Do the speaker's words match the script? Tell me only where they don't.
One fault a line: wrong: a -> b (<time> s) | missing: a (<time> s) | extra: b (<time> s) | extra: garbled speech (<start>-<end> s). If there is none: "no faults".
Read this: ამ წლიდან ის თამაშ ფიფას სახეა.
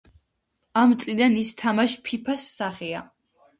no faults